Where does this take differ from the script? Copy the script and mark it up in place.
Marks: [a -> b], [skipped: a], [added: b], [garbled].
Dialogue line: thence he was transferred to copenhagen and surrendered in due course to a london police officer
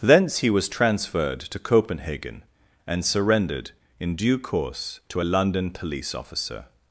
thence he was transferred to copenhagen and surrendered in due course to a london police officer